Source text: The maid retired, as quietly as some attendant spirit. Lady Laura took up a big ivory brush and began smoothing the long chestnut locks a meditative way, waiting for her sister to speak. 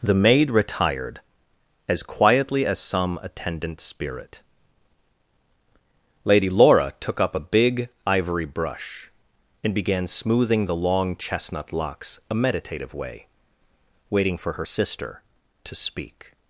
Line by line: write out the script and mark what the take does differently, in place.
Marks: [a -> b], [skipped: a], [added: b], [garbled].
The maid retired, as quietly as some attendant spirit. Lady Laura took up a big ivory brush and began smoothing the long chestnut locks a meditative way, waiting for her sister to speak.